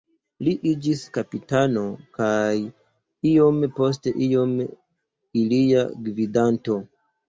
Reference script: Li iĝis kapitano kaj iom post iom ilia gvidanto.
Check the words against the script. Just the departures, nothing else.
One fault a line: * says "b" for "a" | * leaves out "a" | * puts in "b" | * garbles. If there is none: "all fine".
all fine